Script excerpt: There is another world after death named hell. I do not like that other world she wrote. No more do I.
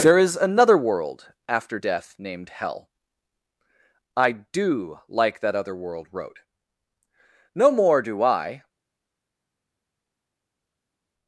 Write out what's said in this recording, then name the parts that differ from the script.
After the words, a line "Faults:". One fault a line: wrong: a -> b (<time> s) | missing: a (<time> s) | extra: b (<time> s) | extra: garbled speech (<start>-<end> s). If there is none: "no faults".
There is another world after death named hell. I do like that other world wrote. No more do I.
Faults:
missing: not (5.0 s)
missing: she (6.1 s)